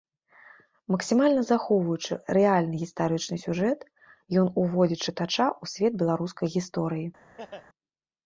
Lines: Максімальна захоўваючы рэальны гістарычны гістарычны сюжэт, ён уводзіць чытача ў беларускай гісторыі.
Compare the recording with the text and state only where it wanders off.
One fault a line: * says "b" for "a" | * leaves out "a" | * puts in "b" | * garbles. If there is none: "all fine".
* leaves out "гістарычны"
* puts in "свет"